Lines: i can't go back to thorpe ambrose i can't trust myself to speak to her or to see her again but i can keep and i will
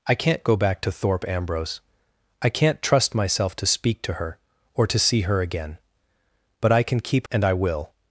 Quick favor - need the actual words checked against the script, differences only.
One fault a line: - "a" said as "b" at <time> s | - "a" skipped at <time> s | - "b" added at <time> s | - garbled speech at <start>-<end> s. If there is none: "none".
none